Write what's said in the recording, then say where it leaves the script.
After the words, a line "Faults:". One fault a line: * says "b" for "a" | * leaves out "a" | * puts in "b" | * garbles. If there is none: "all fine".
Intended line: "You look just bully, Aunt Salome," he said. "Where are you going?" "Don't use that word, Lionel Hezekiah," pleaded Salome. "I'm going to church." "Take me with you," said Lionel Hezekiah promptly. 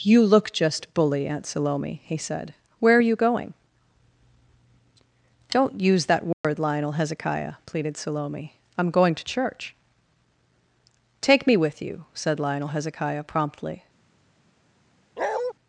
"You look just bully, Aunt Salome," he said. "Where are you going?" "Don't use that word, Lionel Hezekiah," pleaded Salome. "I'm going to church." "Take me with you," said Lionel Hezekiah promptly.
Faults:
all fine